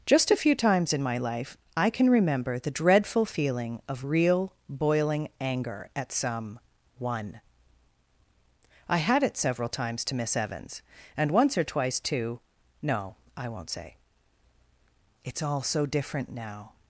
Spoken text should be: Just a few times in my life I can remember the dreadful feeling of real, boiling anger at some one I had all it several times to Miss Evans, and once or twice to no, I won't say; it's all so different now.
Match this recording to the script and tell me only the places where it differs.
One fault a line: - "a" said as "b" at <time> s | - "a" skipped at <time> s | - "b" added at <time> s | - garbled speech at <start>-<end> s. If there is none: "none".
- "all" skipped at 9.2 s